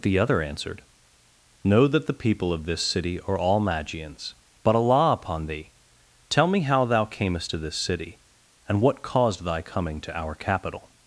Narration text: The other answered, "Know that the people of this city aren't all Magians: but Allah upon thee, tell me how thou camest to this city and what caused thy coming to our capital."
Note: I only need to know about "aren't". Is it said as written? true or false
false